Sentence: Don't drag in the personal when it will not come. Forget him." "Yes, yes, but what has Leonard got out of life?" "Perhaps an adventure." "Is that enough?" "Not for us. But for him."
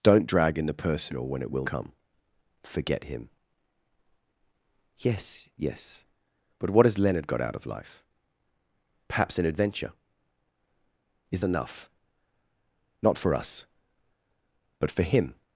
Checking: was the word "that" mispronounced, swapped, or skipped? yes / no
yes